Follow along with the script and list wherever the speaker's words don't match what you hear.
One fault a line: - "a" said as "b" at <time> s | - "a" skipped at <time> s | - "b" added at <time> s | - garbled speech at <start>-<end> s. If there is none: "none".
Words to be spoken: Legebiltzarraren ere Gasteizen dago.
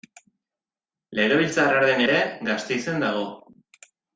none